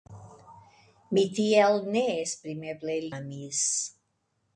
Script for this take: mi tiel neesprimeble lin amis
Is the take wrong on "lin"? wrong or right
wrong